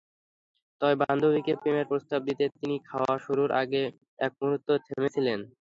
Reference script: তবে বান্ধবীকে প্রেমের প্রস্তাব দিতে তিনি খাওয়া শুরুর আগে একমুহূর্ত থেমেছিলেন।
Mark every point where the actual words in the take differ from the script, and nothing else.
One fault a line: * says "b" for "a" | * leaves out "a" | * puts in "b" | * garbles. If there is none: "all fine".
all fine